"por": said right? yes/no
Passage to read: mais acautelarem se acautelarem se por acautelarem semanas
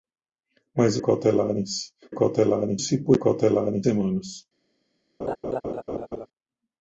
yes